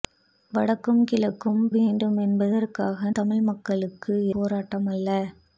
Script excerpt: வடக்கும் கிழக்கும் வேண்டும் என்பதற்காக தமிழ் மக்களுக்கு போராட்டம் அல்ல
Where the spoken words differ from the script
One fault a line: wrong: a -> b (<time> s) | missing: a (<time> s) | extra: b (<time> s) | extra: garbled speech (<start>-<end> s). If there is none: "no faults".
no faults